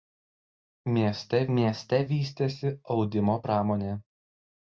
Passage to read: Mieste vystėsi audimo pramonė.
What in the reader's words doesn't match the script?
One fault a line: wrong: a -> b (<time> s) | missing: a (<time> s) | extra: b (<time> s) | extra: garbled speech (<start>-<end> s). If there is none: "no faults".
extra: mieste (1.6 s)